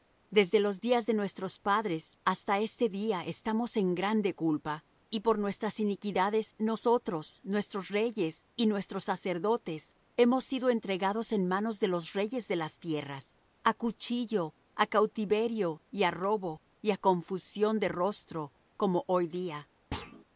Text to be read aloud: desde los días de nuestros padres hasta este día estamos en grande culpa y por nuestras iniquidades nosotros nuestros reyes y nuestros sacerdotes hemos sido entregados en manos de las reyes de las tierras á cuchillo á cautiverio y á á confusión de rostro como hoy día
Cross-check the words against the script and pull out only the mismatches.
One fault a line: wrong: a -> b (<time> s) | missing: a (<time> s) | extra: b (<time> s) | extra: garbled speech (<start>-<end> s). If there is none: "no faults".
wrong: las -> los (11.9 s)
extra: robo y (16.1 s)